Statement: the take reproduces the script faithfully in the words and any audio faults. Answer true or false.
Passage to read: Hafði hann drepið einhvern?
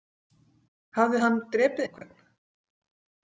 false